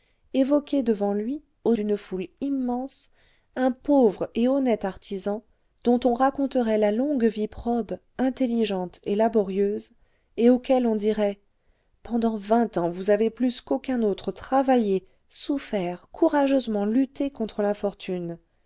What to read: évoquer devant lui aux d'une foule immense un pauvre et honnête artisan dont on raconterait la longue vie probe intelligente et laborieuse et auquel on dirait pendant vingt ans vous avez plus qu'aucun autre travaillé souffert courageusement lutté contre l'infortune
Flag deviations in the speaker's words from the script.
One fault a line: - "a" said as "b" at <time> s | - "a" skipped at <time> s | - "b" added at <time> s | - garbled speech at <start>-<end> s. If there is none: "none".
none